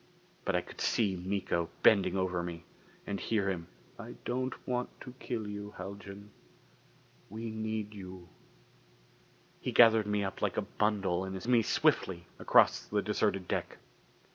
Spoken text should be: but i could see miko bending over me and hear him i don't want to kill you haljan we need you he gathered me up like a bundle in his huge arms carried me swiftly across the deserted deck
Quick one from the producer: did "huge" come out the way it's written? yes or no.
no